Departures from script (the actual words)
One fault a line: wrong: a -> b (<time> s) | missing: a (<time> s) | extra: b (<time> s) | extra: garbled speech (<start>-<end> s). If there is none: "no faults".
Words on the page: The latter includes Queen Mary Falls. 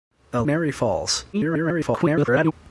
missing: latter includes Queen (0.4 s)
extra: garbled speech (1.3-2.5 s)